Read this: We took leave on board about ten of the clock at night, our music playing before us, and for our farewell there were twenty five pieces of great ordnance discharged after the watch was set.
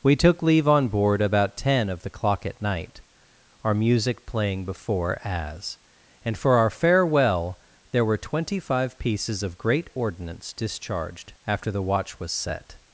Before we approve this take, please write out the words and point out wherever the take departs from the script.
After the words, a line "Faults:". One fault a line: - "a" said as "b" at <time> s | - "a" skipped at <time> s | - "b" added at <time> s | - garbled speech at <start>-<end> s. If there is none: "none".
We took leave on board about ten of the clock at night, our music playing before as, and for our farewell there were twenty five pieces of great ordnance discharged after the watch was set.
Faults:
- "us" said as "as" at 5.2 s